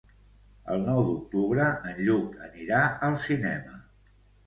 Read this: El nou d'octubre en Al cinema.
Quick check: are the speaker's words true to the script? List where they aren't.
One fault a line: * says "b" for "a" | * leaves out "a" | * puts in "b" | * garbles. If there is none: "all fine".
* puts in "Lluc anirà"